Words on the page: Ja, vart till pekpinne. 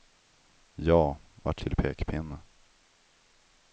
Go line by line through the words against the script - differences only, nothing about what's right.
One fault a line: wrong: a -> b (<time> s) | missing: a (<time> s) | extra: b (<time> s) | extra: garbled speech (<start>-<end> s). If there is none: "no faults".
no faults